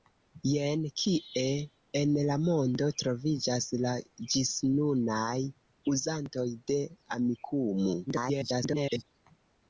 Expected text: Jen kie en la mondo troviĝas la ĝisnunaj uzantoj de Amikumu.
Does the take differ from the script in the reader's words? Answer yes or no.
yes